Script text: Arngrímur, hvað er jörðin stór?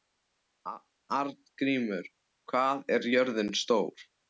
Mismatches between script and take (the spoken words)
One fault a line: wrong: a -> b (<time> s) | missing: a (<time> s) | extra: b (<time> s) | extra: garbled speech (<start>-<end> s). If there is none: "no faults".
no faults